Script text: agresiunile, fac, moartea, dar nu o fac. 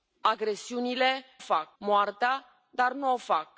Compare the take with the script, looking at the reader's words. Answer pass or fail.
pass